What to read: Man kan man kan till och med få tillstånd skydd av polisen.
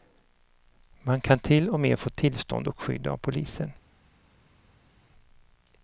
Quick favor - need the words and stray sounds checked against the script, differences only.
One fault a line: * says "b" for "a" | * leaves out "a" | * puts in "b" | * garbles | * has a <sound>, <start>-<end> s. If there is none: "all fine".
* leaves out "man kan"
* puts in "och"